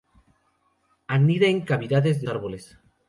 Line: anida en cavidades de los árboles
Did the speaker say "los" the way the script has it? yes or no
no